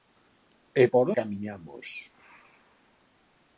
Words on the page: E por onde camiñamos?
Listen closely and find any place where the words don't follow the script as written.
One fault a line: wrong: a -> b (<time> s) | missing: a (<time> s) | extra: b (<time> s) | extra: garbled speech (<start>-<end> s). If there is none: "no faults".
missing: onde (1.0 s)